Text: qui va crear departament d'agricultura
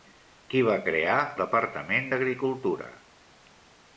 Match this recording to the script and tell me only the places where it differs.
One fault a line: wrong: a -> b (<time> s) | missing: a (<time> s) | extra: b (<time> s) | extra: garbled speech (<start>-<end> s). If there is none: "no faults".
no faults